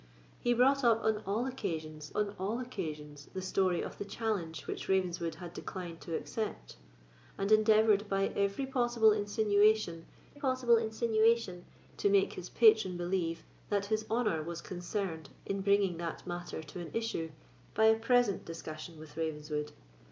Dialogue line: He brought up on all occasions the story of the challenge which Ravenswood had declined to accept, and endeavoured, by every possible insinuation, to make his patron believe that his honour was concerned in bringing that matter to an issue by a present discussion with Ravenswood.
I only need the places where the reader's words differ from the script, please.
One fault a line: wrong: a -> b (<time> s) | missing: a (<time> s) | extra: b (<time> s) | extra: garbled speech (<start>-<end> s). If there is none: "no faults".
extra: on all occasions (2.1 s)
extra: possible insinuation (10.4 s)